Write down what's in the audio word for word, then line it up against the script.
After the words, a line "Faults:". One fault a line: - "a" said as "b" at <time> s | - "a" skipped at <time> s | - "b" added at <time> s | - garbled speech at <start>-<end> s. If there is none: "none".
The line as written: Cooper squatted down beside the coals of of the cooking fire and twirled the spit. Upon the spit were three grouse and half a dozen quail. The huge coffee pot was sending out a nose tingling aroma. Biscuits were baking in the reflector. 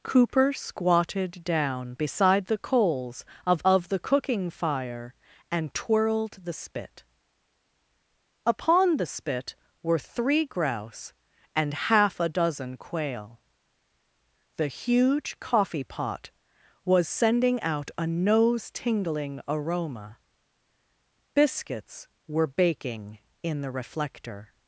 Cooper squatted down beside the coals of of the cooking fire and twirled the spit. Upon the spit were three grouse and half a dozen quail. The huge coffee pot was sending out a nose tingling aroma. Biscuits were baking in the reflector.
Faults:
none